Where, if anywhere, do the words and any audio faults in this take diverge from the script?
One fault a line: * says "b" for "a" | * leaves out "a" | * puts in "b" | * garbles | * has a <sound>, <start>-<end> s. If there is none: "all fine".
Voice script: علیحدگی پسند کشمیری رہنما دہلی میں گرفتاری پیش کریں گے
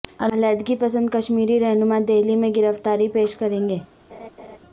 * has a laugh, 4.1-4.6 s